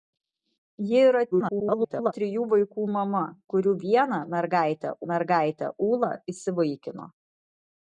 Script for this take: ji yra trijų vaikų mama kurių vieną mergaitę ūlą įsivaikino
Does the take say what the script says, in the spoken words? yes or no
no